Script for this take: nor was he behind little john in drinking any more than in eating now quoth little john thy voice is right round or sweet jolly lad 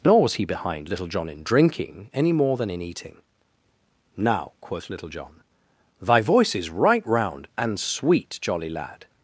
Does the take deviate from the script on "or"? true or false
true